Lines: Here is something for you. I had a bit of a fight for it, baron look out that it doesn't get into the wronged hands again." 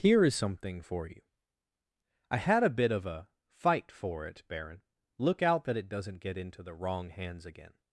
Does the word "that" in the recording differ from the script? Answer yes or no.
no